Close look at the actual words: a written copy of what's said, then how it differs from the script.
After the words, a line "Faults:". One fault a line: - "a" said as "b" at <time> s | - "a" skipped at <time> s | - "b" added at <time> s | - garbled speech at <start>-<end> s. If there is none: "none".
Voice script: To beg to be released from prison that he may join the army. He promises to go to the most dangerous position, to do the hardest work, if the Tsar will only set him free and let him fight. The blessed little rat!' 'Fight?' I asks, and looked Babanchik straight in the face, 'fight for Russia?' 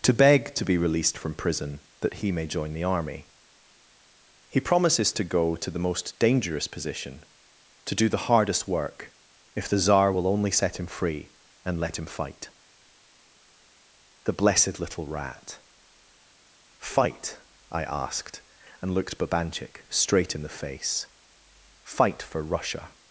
To beg to be released from prison that he may join the army. He promises to go to the most dangerous position, to do the hardest work, if the Tsar will only set him free and let him fight. The blessed little rat!' 'Fight?' I asked, and looked Babanchik straight in the face, 'fight for Russia?'
Faults:
- "asks" said as "asked" at 17.8 s